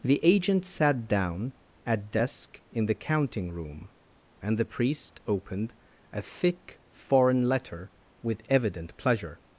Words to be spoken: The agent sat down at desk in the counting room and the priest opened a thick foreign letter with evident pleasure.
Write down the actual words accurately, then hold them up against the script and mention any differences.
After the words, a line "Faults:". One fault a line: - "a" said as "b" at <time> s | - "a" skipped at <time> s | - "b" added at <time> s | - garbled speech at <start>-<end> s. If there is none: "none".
The agent sat down at desk in the counting room and the priest opened a thick foreign letter with evident pleasure.
Faults:
none